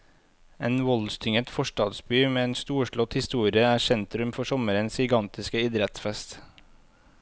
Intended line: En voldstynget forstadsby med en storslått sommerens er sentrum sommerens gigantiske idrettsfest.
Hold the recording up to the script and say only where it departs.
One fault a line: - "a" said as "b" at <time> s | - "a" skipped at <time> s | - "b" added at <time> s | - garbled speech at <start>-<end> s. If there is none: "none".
- "sommerens" said as "historie" at 3.2 s
- "for" added at 4.4 s